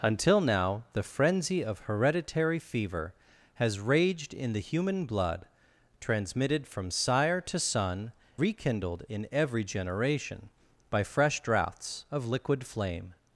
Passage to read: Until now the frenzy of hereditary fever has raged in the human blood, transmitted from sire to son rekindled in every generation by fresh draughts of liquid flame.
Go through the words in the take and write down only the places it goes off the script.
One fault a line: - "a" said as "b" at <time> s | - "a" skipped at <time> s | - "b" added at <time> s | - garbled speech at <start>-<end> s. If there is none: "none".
none